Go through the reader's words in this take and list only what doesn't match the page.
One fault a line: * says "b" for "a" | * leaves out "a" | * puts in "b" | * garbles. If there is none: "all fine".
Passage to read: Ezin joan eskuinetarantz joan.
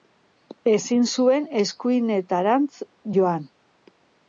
* says "zuen" for "joan"